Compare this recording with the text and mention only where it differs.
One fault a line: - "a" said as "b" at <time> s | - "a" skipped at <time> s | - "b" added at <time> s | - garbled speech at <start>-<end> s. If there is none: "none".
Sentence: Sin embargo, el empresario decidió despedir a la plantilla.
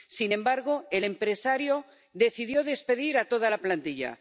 - "toda" added at 3.2 s